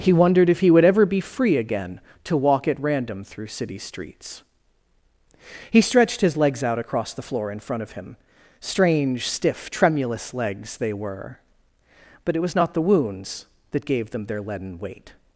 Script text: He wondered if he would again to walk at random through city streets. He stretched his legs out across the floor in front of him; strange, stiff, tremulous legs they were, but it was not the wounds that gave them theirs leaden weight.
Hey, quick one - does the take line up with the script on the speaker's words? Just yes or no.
no